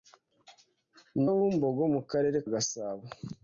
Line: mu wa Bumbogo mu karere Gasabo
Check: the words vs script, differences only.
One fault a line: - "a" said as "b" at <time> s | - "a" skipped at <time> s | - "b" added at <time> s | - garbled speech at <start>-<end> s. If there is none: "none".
none